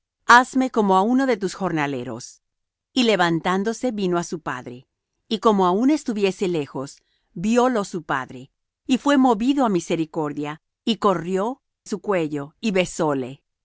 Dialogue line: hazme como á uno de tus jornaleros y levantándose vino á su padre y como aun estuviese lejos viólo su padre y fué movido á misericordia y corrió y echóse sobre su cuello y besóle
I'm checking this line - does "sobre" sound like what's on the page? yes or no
no